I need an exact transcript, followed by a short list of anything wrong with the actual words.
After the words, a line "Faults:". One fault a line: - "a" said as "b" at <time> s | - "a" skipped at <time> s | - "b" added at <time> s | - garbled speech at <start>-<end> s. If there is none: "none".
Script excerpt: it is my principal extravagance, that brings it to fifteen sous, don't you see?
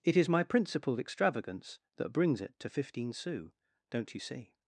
it is my principal extravagance, that brings it to fifteen sous, don't you see?
Faults:
none